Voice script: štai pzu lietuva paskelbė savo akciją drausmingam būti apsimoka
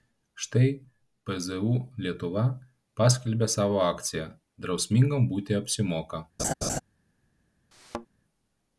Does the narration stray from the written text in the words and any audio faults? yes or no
yes